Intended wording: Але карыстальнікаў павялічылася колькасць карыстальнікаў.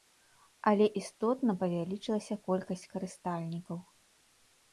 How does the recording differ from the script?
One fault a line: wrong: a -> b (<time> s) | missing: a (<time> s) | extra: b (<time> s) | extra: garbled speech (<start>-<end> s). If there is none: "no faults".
wrong: карыстальнікаў -> істотна (1.0 s)